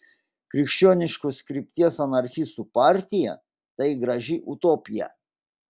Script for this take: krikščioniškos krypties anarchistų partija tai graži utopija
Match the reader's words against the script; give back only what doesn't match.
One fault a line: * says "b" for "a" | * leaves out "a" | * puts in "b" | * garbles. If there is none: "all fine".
all fine